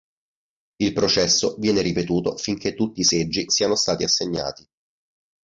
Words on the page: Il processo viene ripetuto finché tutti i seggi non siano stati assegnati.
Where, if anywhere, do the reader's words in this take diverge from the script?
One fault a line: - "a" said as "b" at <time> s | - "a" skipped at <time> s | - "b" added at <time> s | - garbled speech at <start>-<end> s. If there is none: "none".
- "non" skipped at 3.5 s